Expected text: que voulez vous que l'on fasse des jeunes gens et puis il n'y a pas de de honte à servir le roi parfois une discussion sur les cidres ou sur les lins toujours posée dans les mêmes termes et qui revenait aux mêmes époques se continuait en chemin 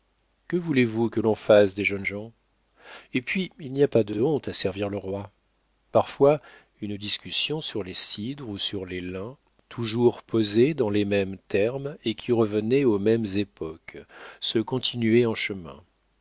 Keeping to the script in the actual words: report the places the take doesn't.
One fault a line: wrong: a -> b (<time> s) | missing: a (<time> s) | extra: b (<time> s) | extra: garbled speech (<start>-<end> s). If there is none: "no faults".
no faults